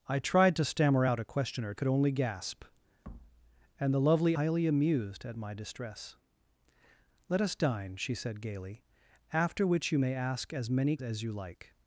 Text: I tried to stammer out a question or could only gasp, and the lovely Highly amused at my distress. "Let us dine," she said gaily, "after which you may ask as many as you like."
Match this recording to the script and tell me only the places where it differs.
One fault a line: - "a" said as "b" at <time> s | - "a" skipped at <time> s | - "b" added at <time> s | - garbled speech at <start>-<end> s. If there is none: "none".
none